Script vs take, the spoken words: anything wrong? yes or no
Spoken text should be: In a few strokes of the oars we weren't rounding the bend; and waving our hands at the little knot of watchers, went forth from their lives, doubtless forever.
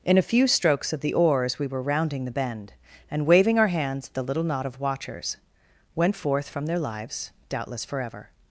yes